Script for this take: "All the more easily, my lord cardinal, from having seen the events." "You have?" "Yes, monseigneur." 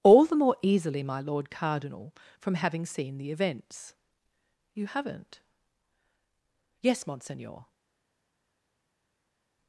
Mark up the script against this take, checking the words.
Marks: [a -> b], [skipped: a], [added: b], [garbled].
"All the more easily, my lord cardinal, from having seen the events." "You [have?" -> haven't] "Yes, monseigneur."